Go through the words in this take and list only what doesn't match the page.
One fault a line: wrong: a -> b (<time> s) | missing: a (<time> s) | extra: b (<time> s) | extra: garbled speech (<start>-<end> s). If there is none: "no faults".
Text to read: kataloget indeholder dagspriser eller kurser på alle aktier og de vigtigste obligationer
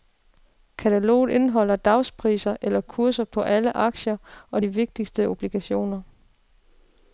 no faults